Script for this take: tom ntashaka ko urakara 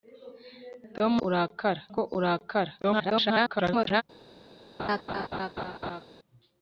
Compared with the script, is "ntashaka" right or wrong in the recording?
wrong